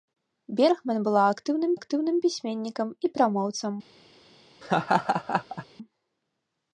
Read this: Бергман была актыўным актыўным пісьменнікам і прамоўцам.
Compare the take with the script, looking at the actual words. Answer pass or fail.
pass